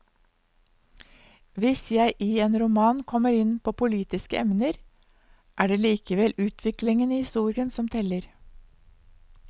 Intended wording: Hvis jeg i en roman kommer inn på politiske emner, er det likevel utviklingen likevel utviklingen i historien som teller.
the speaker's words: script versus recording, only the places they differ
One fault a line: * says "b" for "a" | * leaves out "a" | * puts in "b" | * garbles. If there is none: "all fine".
* leaves out "likevel utviklingen"